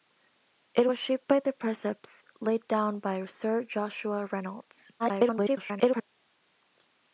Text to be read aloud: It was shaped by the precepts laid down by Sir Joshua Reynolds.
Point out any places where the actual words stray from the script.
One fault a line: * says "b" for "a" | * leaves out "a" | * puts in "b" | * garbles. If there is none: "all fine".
* garbles